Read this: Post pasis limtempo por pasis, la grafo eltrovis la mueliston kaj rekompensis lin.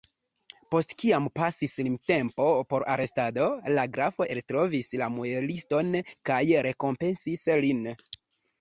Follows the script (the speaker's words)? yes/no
no